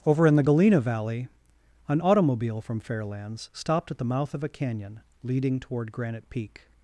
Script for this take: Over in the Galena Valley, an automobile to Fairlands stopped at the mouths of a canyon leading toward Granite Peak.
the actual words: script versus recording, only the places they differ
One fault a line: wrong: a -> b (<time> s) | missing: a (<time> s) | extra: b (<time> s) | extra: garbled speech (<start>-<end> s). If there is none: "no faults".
wrong: to -> from (2.6 s)
wrong: mouths -> mouth (4.0 s)